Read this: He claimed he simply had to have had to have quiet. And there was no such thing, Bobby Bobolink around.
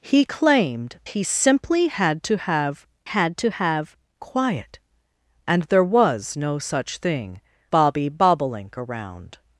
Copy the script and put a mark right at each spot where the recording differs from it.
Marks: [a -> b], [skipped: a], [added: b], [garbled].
He claimed he simply had to have had to have quiet. And there was no such thing, Bobby Bobolink around.